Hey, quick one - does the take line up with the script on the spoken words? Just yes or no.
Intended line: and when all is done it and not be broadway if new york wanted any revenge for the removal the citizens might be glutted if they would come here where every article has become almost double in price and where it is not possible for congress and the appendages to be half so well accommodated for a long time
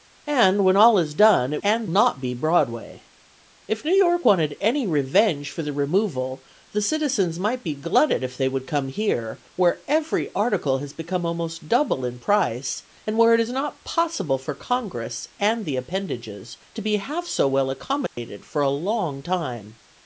yes